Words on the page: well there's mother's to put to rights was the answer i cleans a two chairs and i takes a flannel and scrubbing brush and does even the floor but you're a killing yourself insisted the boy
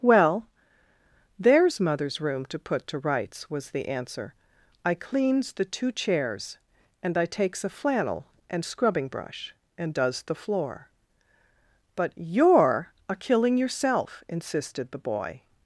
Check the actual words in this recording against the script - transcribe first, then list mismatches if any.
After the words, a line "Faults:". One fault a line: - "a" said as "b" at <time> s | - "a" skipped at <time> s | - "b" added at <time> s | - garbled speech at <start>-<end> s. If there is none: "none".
well there's mother's room to put to rights was the answer i cleans the two chairs and i takes a flannel and scrubbing brush and does the floor but you're a killing yourself insisted the boy
Faults:
- "room" added at 2.2 s
- "a" said as "the" at 5.5 s
- "even" skipped at 10.2 s